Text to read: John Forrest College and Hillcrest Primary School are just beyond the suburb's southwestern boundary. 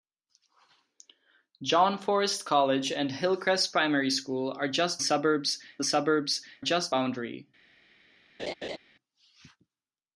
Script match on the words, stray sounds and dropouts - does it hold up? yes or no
no